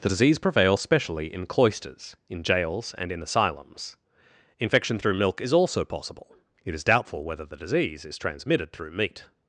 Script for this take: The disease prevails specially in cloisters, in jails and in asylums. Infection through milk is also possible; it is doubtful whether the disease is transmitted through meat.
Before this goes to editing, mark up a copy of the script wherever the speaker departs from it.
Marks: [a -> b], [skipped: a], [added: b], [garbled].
The disease prevails specially in cloisters, in jails and in asylums. Infection through milk is also possible; it is doubtful whether the disease is transmitted through meat.